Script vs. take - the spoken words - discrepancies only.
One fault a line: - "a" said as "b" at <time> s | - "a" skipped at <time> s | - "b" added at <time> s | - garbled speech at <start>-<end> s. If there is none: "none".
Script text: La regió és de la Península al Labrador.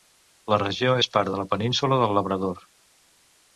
- "part" added at 1.2 s
- "al" said as "del" at 2.0 s